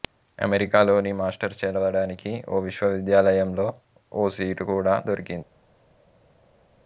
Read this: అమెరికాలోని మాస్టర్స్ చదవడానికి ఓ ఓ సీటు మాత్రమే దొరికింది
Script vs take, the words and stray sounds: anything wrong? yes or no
yes